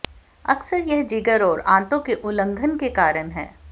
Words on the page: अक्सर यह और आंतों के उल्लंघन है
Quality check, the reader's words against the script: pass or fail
fail